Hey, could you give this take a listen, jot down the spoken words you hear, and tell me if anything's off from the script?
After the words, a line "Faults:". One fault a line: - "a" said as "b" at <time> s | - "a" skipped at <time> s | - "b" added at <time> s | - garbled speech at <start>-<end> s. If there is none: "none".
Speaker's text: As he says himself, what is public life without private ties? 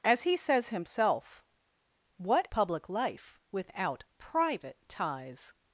As he says himself, what public life without private ties?
Faults:
- "is" skipped at 2.5 s